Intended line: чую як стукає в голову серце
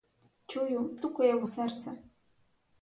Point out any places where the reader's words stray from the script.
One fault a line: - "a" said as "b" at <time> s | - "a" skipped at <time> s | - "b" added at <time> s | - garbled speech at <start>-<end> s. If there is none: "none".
- "як" skipped at 0.9 s
- "голову" skipped at 1.5 s